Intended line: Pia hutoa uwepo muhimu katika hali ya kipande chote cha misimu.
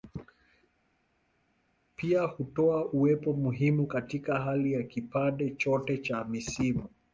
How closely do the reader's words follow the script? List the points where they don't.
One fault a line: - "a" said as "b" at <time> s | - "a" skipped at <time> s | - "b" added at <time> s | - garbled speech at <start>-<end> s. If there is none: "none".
none